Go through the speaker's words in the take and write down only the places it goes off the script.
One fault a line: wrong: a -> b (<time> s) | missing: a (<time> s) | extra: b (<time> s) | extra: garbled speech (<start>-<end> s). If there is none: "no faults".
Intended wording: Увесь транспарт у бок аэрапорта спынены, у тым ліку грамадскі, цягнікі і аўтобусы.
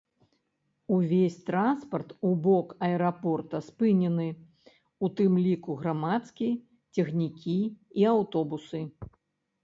no faults